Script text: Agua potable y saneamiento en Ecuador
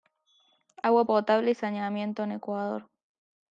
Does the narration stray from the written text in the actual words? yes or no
no